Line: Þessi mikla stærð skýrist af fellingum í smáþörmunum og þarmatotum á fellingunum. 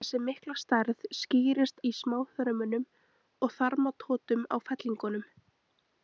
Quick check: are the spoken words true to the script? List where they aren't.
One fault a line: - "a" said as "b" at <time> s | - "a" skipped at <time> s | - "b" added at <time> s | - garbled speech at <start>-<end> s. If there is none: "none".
- "af fellingum" skipped at 1.8 s